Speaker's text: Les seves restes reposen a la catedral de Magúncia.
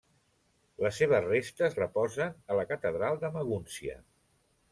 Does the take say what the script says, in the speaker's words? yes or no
yes